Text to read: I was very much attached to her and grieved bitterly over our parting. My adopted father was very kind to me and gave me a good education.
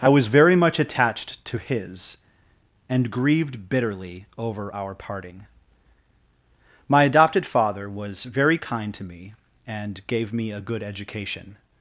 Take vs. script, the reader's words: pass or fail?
fail